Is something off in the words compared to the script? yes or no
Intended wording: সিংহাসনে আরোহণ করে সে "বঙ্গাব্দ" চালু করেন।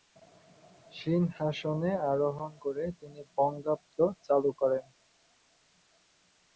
yes